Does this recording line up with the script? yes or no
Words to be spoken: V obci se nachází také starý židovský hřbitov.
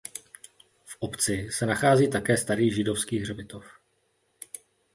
yes